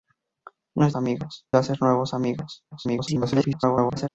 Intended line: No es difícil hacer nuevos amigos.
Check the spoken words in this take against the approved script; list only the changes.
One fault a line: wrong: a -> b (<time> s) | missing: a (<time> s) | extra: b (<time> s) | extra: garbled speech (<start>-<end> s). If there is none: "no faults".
wrong: difícil -> amigos (0.9 s)
extra: garbled speech (2.7-4.1 s)